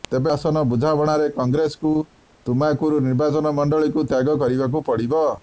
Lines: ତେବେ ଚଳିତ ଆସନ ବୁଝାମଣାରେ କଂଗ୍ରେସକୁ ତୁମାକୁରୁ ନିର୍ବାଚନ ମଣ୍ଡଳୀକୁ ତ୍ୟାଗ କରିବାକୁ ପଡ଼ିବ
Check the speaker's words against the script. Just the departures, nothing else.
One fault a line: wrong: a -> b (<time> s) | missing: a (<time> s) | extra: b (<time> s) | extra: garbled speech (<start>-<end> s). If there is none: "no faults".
missing: ଚଳିତ (0.3 s)